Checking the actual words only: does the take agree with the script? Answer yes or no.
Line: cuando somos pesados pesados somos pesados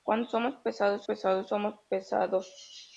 yes